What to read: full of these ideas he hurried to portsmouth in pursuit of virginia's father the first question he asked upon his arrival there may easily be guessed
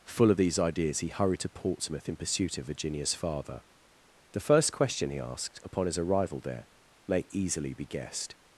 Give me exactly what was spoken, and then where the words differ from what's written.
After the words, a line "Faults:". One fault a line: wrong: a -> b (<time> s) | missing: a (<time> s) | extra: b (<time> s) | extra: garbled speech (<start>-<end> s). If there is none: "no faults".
full of these ideas he hurried to portsmouth in pursuit of virginia's father the first question he asked upon his arrival there may easily be guessed
Faults:
no faults